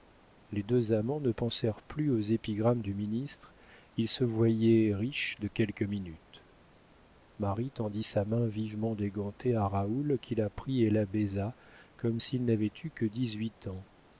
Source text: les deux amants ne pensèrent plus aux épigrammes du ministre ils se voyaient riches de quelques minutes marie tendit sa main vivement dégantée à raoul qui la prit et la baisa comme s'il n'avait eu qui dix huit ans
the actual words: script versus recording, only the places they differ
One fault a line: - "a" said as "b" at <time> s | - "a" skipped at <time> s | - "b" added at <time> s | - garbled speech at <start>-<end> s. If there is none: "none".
- "qui" said as "que" at 12.9 s